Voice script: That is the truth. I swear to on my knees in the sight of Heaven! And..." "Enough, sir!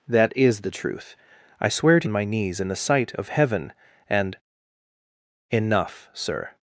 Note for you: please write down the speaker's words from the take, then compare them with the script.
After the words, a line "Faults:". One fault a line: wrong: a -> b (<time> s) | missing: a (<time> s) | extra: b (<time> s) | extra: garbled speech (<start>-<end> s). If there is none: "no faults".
That is the truth. I swear to on my knees in the sight of Heaven! And..." "Enough, sir!
Faults:
no faults